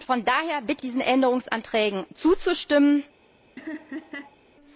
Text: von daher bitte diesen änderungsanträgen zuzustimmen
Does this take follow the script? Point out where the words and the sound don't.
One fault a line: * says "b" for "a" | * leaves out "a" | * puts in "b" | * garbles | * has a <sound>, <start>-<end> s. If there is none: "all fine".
* has a laugh, 3.6-4.4 s